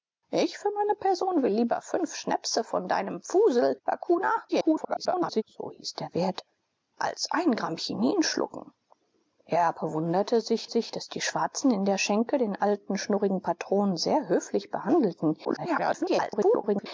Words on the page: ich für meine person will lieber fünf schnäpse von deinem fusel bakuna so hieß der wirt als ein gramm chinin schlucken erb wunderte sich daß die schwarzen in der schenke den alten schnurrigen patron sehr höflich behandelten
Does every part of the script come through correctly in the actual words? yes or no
no